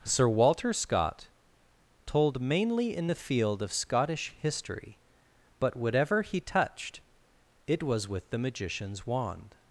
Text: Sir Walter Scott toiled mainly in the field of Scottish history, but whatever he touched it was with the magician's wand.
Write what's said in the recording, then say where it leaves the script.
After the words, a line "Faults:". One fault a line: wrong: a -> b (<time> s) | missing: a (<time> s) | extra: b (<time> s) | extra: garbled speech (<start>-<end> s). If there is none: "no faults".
Sir Walter Scott told mainly in the field of Scottish history, but whatever he touched it was with the magician's wand.
Faults:
wrong: toiled -> told (2.0 s)